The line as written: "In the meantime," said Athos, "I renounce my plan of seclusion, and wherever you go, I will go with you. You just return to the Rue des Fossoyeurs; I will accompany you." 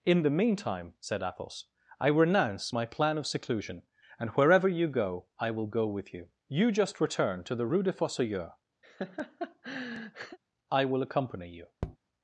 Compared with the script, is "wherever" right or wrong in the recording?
right